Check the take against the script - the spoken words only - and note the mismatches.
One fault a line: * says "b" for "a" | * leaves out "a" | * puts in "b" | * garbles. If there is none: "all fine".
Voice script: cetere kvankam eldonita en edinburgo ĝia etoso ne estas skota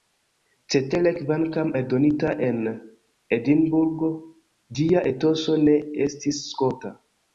* says "estis" for "estas"